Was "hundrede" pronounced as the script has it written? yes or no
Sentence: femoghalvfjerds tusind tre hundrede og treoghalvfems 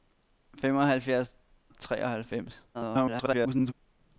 no